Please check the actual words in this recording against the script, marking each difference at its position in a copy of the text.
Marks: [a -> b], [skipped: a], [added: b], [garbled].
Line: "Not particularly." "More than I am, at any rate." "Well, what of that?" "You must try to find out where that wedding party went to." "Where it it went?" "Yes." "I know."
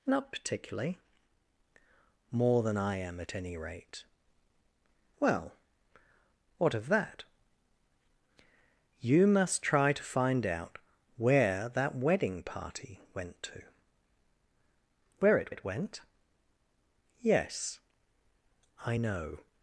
"Not particularly." "More than I am, at any rate." "Well, what of that?" "You must try to find out where that wedding party went to." "Where it it went?" "Yes." "I know."